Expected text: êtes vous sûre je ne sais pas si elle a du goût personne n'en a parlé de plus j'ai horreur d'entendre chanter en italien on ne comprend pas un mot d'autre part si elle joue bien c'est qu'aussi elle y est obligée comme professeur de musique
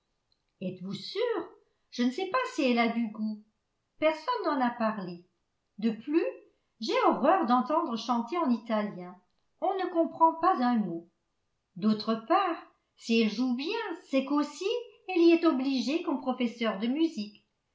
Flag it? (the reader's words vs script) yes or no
no